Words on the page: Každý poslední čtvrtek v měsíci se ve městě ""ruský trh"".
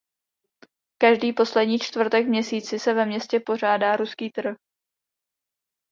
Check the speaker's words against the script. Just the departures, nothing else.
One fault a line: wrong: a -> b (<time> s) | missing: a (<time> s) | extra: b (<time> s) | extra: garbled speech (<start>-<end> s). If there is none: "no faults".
extra: pořádá (3.5 s)